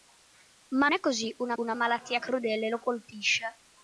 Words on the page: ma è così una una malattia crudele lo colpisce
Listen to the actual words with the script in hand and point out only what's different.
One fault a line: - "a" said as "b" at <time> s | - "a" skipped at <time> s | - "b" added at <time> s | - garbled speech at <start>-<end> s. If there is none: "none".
none